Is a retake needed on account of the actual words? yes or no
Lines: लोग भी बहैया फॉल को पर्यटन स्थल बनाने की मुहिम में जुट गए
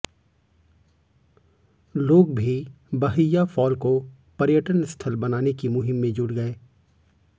no